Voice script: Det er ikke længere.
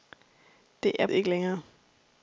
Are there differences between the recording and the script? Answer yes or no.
no